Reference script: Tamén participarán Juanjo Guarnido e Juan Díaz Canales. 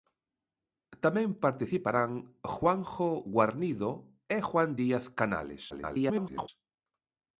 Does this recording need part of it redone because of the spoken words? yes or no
yes